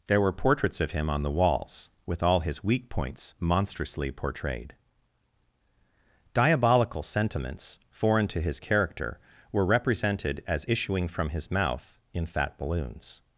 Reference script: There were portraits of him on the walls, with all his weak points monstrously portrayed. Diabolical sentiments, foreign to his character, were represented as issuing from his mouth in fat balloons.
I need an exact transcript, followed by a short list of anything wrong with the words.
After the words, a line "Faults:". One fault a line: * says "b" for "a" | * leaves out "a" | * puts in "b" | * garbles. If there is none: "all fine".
There were portraits of him on the walls, with all his weak points monstrously portrayed. Diabolical sentiments, foreign to his character, were represented as issuing from his mouth in fat balloons.
Faults:
all fine